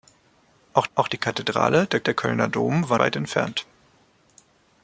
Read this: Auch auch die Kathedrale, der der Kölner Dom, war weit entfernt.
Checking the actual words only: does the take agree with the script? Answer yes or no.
yes